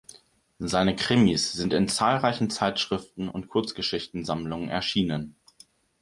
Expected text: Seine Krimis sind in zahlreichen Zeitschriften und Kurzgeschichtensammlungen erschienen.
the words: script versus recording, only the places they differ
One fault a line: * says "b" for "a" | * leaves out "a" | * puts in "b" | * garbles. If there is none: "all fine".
all fine